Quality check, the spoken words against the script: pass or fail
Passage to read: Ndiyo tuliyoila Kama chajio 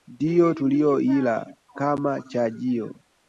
pass